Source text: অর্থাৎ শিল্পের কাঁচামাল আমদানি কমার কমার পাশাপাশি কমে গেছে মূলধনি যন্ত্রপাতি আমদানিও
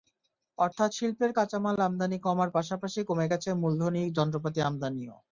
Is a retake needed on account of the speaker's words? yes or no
yes